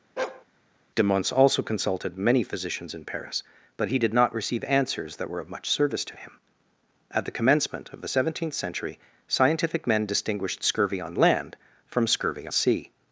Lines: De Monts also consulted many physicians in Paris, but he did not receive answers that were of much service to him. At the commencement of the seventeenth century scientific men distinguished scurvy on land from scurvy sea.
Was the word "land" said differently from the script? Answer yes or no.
no